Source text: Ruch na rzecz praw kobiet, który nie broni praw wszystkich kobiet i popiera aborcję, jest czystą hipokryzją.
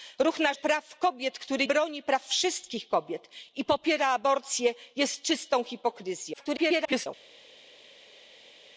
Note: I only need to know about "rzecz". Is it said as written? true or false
false